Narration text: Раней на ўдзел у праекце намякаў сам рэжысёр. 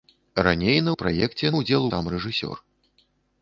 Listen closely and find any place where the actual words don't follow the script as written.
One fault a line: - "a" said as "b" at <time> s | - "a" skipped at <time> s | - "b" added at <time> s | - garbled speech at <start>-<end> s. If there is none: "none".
- "ўдзел" skipped at 0.9 s
- "намякаў" said as "ўдзел" at 1.6 s